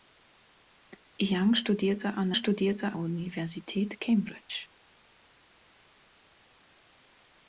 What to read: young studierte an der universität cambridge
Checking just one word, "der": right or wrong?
wrong